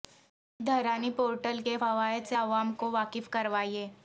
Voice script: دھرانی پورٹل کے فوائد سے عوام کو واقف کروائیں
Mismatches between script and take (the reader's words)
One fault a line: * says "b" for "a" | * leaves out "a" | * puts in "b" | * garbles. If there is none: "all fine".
all fine